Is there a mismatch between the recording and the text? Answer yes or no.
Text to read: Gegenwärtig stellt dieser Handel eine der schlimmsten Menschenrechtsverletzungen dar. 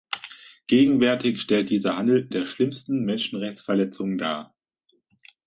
yes